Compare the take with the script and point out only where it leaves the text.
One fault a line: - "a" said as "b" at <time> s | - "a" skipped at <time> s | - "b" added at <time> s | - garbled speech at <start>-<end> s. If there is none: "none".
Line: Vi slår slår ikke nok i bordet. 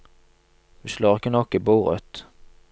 - "slår" skipped at 1.1 s